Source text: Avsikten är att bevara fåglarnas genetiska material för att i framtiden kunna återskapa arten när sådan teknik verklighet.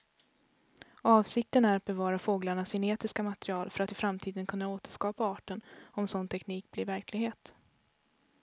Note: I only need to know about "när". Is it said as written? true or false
false